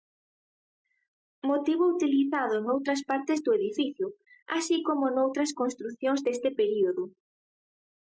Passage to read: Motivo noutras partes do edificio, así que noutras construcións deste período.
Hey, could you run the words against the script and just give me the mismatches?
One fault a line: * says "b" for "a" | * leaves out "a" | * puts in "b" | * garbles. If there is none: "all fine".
* puts in "utilizado"
* says "como" for "que"